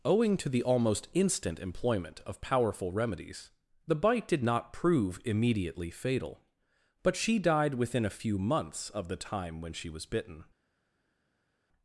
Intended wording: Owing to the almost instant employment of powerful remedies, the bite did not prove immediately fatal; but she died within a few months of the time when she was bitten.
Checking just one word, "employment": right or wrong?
right